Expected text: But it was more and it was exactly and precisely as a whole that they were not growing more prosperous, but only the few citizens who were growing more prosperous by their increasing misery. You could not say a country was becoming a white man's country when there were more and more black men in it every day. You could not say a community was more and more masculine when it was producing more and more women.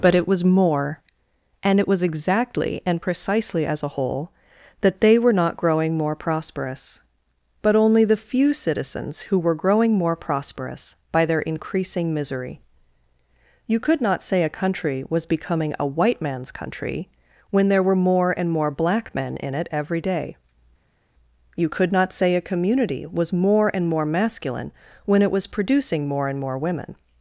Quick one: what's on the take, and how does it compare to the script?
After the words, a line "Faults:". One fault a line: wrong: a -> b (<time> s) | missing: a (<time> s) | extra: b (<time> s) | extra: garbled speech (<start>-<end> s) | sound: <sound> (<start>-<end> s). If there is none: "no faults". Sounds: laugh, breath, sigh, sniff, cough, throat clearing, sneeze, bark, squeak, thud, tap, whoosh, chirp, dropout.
But it was more and it was exactly and precisely as a whole that they were not growing more prosperous, but only the few citizens who were growing more prosperous by their increasing misery. You could not say a country was becoming a white man's country when there were more and more black men in it every day. You could not say a community was more and more masculine when it was producing more and more women.
Faults:
no faults